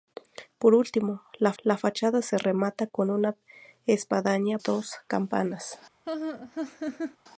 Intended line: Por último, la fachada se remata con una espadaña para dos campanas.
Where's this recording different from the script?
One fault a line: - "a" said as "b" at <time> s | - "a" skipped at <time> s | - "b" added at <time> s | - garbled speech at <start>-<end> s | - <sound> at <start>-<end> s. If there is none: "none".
- "la" added at 1.6 s
- "para" skipped at 4.6 s
- laugh at 6.0-7.2 s